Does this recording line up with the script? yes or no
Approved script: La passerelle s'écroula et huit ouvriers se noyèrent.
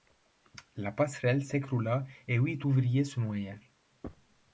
yes